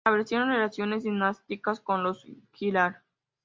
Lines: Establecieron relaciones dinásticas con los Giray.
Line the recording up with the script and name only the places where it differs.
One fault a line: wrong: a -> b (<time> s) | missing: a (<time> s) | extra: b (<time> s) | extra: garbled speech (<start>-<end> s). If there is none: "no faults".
no faults